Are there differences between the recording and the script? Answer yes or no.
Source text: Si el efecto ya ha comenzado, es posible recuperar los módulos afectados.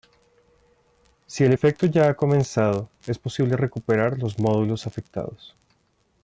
no